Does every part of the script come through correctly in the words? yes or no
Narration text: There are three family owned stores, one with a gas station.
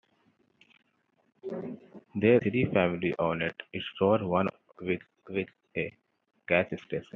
no